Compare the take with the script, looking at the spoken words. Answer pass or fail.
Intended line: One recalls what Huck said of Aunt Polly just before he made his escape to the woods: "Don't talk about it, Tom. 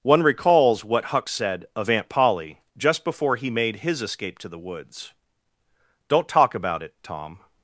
pass